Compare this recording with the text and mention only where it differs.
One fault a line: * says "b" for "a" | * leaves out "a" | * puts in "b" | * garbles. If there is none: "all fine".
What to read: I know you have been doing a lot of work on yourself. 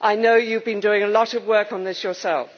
* puts in "this"